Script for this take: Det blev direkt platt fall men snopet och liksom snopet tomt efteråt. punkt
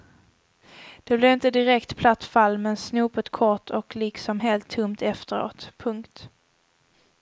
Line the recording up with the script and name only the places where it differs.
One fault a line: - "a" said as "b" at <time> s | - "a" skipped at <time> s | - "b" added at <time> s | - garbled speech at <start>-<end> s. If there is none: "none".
- "inte" added at 1.3 s
- "kort" added at 3.3 s
- "snopet" said as "helt" at 4.4 s